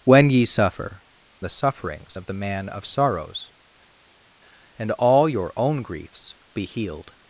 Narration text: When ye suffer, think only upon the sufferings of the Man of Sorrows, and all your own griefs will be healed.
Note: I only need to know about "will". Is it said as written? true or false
false